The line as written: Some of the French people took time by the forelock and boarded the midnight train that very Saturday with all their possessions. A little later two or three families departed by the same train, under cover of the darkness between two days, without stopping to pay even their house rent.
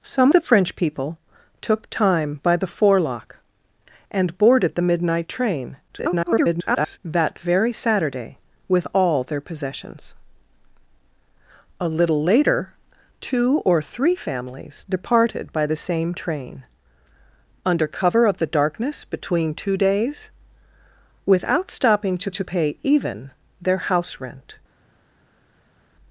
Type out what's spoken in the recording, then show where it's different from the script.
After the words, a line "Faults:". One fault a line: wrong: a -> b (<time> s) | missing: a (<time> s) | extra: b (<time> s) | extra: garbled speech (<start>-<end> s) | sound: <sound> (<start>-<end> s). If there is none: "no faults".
Some the French people took time by the forelock and boarded the midnight train [garbled] that very Saturday with all their possessions. A little later two or three families departed by the same train, under cover of the darkness between two days, without stopping to to pay even their house rent.
Faults:
missing: of (0.3 s)
extra: garbled speech (5.9-7.0 s)
extra: to (22.3 s)